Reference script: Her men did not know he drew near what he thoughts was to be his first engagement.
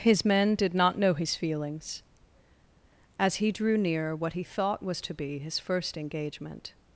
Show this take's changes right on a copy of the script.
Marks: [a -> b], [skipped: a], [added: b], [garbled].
[Her -> His] men did not know [added: his feelings as] he drew near what he [thoughts -> thought] was to be his first engagement.